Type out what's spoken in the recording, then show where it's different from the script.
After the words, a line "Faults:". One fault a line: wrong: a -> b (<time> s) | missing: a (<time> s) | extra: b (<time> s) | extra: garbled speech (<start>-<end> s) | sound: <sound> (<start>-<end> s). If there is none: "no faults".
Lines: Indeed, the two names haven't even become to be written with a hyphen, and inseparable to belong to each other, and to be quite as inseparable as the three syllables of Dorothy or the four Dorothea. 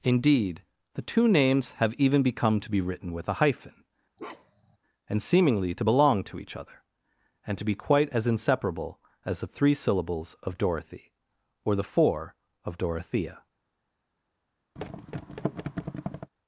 Indeed, the two names have even become to be written with a hyphen, and seemingly to belong to each other, and to be quite as inseparable as the three syllables of Dorothy or the four of Dorothea.
Faults:
wrong: haven't -> have (1.7 s)
sound: bark (4.2-4.8 s)
wrong: inseparable -> seemingly (5.2 s)
extra: of (12.6 s)
sound: thud (14.8-16.3 s)